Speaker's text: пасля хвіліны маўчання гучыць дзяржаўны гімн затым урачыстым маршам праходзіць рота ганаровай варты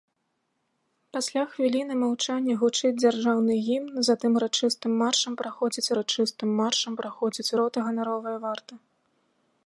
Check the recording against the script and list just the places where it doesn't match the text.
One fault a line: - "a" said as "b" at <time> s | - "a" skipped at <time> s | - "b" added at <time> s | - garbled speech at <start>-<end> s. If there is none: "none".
- "урачыстым маршам праходзіць" added at 6.0 s